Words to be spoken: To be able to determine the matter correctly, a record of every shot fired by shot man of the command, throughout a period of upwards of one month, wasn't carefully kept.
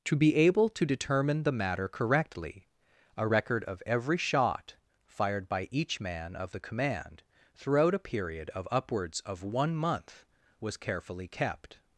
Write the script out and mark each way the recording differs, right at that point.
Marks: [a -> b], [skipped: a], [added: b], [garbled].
To be able to determine the matter correctly, a record of every shot fired by [shot -> each] man of the command, throughout a period of upwards of one month, [wasn't -> was] carefully kept.